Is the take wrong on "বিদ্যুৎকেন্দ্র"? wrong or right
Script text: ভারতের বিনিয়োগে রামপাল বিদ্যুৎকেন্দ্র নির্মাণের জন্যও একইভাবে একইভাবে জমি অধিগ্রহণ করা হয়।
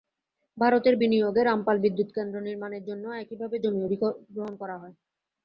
right